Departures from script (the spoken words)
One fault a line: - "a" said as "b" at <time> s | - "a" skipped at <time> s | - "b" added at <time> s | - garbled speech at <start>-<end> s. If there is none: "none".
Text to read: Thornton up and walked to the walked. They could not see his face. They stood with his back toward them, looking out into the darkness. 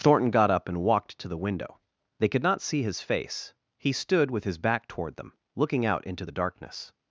- "got" added at 0.3 s
- "walked" said as "window" at 1.4 s
- "They" said as "He" at 3.8 s